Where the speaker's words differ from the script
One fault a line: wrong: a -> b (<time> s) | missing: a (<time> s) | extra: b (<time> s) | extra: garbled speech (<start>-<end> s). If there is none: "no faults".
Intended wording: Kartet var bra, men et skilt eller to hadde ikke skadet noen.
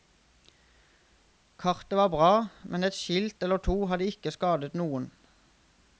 no faults